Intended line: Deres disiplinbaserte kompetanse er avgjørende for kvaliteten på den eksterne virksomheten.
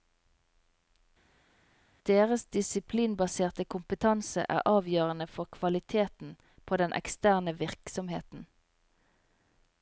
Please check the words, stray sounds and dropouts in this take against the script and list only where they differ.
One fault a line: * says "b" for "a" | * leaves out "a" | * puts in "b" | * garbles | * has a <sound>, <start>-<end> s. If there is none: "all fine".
all fine